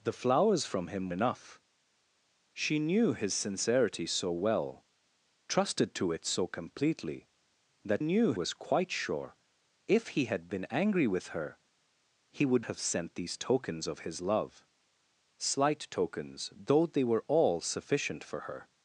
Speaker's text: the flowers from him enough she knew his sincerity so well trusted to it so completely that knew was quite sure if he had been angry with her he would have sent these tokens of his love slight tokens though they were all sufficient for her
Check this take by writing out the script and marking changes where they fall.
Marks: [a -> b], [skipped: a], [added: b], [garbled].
the flowers from him enough she knew his sincerity so well trusted to it so completely that knew was quite sure if he had been angry with her he would have sent these tokens of his love slight tokens though they were all sufficient for her